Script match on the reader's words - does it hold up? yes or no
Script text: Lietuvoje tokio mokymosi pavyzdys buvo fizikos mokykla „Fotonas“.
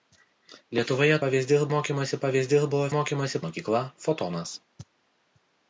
no